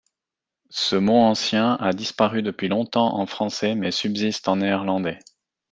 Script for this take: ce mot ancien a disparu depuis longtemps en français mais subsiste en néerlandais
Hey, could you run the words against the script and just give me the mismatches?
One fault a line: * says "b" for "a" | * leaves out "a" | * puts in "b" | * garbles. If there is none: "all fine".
all fine